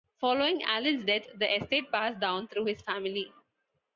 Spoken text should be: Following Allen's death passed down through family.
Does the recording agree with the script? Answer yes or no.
no